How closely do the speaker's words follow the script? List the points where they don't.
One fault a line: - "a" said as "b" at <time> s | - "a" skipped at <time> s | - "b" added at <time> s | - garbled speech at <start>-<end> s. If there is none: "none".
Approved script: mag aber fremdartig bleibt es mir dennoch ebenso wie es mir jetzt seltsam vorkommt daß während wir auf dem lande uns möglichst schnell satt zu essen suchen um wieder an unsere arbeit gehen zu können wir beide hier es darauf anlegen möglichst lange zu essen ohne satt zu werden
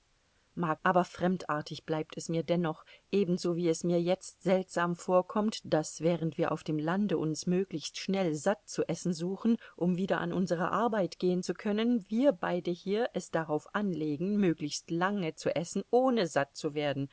none